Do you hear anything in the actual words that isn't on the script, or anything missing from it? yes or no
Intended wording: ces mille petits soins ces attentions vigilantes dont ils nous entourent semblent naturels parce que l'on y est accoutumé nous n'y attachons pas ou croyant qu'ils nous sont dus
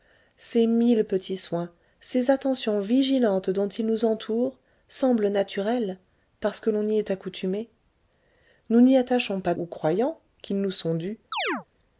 no